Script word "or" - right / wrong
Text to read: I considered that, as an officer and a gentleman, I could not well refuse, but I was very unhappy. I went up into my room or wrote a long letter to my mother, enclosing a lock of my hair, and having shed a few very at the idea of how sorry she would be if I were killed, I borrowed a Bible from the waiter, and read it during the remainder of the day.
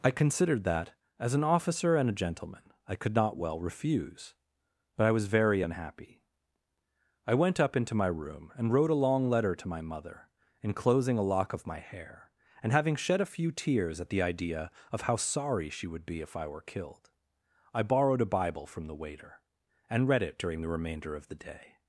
wrong